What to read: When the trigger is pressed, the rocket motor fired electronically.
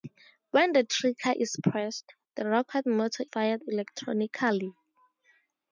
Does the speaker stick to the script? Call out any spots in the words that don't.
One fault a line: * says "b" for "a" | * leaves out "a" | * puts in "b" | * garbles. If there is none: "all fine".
all fine